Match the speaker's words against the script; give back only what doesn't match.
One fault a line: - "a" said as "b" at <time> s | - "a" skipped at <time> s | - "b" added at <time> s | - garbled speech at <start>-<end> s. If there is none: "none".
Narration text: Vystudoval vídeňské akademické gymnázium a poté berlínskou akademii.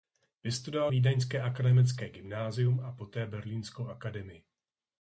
none